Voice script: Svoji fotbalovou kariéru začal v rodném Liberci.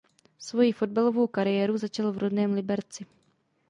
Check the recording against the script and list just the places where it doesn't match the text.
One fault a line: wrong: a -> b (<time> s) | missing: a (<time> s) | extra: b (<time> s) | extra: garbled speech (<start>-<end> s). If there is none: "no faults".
no faults